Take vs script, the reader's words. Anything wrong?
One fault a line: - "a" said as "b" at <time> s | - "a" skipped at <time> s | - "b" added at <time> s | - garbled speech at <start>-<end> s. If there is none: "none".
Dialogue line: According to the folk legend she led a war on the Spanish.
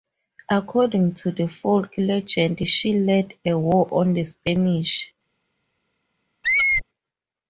none